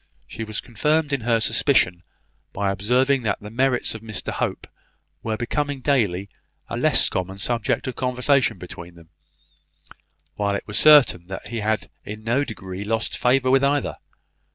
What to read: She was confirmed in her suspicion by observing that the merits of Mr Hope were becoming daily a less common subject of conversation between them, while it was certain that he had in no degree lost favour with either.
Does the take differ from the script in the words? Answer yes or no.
no